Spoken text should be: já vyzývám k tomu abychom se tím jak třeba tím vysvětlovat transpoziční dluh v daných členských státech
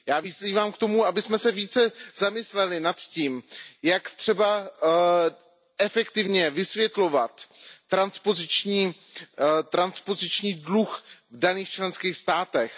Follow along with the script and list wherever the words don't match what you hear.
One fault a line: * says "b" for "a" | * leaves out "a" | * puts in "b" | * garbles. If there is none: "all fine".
* puts in "více zamysleli nad"
* says "efektivně" for "tím"